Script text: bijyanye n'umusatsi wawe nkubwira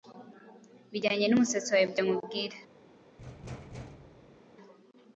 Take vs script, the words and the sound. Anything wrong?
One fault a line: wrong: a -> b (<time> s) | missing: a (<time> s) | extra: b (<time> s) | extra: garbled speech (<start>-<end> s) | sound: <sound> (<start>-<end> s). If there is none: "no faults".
extra: ibyo (1.9 s)
sound: thud (3.2-4.4 s)